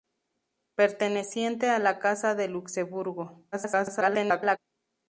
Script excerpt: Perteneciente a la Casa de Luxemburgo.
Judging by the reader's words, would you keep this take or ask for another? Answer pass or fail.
fail